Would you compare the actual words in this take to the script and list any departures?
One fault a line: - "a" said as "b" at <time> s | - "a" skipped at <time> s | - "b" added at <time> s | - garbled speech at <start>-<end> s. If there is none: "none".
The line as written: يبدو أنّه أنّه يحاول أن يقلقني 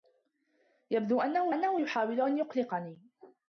none